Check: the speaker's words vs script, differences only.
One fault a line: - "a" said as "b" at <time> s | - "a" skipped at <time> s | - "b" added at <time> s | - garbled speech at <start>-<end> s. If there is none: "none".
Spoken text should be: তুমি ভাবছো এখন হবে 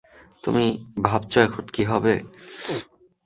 - "কী" added at 1.7 s